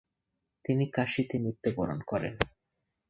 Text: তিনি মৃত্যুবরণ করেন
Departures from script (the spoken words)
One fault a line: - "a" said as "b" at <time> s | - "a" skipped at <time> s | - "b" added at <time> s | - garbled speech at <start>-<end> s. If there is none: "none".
- "কাশীতে" added at 0.9 s